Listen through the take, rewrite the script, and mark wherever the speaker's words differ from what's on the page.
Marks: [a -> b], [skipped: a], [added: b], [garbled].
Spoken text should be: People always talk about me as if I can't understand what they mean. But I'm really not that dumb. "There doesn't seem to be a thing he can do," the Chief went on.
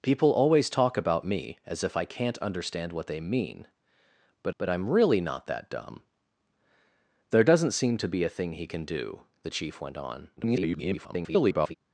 People always talk about me as if I can't understand what they mean. But [added: but] I'm really not that dumb. "There doesn't seem to be a thing he can do," the Chief went on. [garbled]